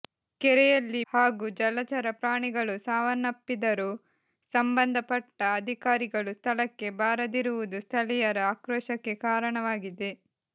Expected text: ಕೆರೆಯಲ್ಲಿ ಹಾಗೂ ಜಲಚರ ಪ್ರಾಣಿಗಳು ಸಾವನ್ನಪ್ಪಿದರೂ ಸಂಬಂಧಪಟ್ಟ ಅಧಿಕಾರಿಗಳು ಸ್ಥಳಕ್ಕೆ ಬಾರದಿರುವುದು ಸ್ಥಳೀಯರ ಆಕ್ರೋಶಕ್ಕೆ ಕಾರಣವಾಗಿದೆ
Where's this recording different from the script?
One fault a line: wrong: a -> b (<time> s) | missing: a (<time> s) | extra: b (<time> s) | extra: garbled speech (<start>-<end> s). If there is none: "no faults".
no faults